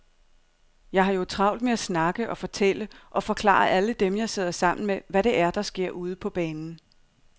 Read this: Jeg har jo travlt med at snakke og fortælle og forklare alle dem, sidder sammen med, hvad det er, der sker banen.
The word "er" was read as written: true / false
true